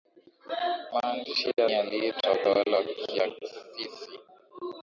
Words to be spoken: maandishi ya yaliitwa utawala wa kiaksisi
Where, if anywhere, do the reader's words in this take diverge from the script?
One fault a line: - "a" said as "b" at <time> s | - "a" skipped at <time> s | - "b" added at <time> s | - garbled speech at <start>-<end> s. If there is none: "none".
none